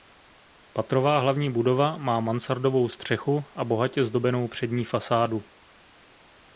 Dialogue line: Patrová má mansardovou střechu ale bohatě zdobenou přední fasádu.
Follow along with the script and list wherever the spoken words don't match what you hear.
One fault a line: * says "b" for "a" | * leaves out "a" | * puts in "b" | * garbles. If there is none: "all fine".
* puts in "hlavní budova"
* says "a" for "ale"